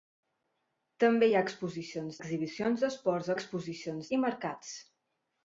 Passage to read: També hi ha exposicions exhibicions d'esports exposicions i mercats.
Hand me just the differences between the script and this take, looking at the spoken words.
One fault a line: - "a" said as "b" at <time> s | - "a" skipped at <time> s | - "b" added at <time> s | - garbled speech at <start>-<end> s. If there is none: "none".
none